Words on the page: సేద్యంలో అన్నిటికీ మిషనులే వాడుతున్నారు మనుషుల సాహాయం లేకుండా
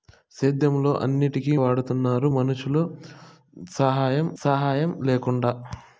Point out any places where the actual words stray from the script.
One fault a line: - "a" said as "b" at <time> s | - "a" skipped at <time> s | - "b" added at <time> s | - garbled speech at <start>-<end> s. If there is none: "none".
- "మిషనులే" skipped at 1.5 s
- "సాహాయం" added at 4.4 s